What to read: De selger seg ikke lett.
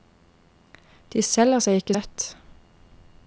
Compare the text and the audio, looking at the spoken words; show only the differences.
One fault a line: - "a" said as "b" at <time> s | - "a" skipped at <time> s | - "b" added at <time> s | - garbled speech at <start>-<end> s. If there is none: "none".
none